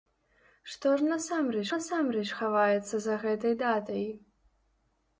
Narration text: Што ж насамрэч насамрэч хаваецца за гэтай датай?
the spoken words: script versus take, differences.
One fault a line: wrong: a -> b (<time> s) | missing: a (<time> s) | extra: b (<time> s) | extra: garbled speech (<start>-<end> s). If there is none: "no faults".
no faults